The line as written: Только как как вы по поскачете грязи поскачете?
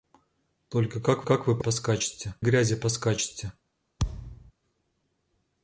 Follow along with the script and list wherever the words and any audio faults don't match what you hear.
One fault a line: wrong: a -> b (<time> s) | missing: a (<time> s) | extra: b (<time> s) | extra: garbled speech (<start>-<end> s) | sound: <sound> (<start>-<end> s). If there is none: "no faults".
sound: thud (4.0-4.5 s)